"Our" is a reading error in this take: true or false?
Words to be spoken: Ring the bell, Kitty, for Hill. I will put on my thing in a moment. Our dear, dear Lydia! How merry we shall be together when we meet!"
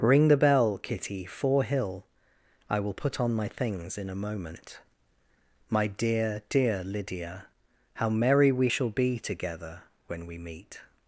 true